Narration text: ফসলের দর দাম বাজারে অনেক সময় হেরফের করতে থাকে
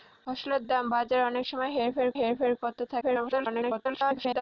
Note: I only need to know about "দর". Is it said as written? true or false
false